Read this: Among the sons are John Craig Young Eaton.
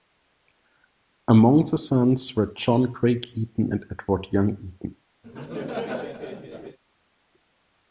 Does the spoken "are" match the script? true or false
false